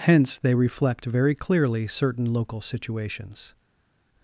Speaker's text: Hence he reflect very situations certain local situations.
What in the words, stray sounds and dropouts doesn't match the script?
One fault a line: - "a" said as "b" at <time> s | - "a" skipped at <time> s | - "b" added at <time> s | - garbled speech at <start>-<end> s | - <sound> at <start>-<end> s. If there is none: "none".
- "he" said as "they" at 0.4 s
- "situations" said as "clearly" at 1.4 s